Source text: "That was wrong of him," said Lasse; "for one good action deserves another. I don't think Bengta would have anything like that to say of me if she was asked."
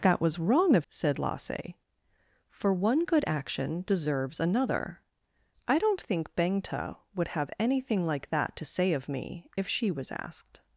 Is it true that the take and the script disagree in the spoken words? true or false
true